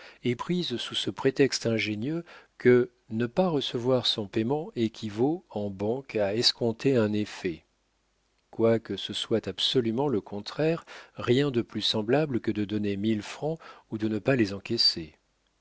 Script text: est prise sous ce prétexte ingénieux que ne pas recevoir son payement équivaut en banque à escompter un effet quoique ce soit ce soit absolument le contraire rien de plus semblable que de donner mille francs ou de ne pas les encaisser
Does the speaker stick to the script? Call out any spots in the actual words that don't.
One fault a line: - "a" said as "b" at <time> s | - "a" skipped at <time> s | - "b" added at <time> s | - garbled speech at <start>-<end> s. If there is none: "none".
- "ce soit" skipped at 9.5 s